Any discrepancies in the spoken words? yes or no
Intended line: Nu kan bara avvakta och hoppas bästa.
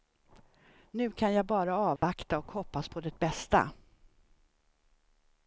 yes